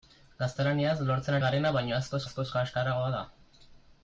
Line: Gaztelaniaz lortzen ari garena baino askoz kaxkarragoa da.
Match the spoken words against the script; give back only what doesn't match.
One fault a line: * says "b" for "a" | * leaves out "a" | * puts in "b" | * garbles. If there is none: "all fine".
* leaves out "ari"
* puts in "askoz"